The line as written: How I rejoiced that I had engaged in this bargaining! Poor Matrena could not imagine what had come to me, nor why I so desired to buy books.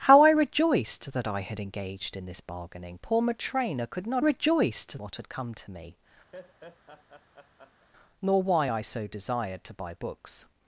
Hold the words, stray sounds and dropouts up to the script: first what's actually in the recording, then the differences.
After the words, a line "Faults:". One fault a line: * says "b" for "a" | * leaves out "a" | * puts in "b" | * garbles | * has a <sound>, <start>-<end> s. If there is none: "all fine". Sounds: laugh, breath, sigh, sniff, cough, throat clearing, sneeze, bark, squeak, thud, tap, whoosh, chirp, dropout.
How I rejoiced that I had engaged in this bargaining! Poor Matrena could not rejoiced what had come to me, nor why I so desired to buy books.
Faults:
* says "rejoiced" for "imagine"
* has a laugh, 6.3-7.9 s